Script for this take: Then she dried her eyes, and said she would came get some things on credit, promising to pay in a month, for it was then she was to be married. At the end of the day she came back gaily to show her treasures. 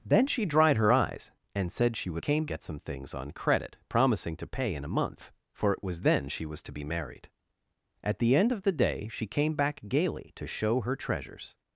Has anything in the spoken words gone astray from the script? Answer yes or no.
no